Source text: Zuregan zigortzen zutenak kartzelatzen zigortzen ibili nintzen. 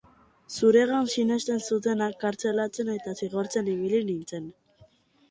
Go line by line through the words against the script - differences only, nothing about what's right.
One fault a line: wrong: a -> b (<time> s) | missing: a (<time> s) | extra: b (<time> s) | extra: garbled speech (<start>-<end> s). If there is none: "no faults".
wrong: zigortzen -> sinesten (1.1 s)
extra: eta (2.9 s)